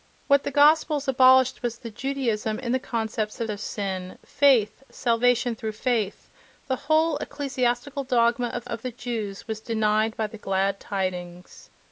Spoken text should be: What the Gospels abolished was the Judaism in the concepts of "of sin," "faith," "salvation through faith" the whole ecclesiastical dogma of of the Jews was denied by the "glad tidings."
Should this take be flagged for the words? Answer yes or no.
no